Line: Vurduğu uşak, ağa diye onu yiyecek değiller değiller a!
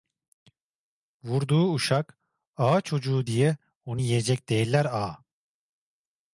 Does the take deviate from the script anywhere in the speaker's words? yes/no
yes